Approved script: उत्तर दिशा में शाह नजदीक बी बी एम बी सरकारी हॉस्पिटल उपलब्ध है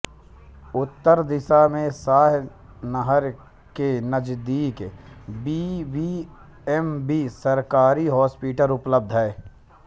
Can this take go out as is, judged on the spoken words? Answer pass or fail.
fail